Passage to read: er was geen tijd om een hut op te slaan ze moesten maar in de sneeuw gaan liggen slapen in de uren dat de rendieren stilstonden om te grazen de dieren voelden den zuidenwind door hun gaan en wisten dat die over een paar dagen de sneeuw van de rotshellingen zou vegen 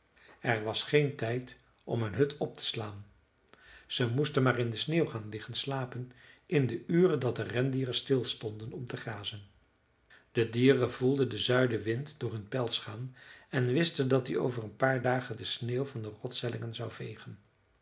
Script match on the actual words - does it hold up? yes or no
no